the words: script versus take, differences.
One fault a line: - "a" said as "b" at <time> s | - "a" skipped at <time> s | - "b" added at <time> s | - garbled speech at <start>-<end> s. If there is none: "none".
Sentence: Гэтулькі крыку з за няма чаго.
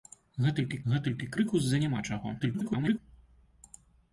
- "гэтулькі" added at 0.9 s
- garbled speech at 2.4-3.0 s